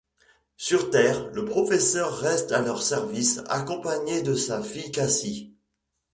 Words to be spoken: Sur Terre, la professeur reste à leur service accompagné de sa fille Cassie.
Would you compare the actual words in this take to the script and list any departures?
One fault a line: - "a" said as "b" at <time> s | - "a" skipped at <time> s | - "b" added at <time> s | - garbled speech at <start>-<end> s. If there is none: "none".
- "la" said as "le" at 1.3 s